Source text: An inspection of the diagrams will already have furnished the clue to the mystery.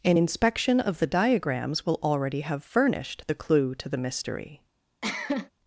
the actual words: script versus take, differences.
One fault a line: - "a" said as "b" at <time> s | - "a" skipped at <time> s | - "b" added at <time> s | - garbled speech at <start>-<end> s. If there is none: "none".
none